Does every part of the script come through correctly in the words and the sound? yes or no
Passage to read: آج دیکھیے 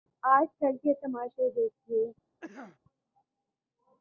no